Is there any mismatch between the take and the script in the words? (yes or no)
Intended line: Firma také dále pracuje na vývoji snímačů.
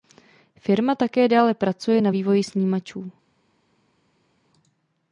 no